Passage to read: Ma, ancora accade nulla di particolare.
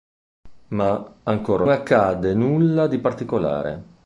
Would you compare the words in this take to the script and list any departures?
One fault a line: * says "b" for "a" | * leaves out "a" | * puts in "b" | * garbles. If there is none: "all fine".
all fine